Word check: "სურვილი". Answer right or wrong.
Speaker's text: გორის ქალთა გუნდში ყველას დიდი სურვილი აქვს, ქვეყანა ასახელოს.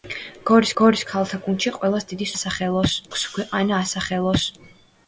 wrong